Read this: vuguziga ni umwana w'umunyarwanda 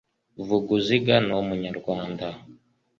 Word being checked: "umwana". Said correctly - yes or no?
no